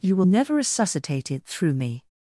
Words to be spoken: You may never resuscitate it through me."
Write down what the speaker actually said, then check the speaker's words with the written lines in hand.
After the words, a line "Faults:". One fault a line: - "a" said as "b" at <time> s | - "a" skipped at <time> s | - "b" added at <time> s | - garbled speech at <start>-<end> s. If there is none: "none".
You will never resuscitate it through me."
Faults:
- "may" said as "will" at 0.1 s